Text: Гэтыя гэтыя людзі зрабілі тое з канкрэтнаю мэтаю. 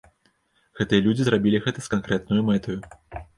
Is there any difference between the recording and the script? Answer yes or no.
yes